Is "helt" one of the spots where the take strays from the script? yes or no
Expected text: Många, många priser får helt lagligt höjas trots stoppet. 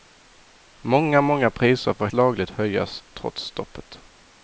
yes